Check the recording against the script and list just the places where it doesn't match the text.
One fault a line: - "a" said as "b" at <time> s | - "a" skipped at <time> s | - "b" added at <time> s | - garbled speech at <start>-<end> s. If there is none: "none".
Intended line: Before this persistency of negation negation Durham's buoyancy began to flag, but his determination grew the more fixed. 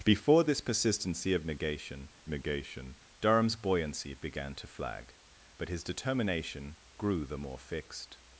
none